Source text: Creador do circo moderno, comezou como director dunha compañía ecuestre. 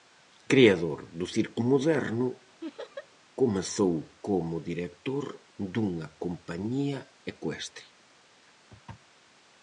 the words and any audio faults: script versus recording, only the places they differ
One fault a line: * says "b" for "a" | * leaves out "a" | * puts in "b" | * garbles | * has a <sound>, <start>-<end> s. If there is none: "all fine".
* has a laugh, 2.6-3.1 s